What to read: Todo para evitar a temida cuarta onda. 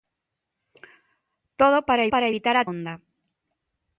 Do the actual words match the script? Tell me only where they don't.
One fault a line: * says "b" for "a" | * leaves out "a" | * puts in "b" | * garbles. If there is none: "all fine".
* puts in "para"
* leaves out "temida cuarta"